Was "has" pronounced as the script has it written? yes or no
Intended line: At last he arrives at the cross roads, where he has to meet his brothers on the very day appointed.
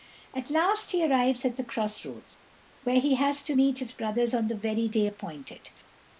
yes